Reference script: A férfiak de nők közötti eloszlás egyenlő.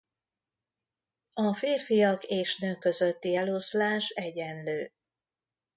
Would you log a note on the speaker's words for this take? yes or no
yes